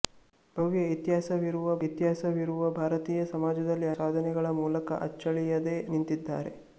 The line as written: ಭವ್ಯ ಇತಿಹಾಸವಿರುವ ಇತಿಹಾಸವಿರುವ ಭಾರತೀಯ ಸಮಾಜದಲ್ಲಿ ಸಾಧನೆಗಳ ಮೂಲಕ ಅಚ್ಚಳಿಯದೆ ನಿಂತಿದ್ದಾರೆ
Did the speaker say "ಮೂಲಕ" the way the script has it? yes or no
yes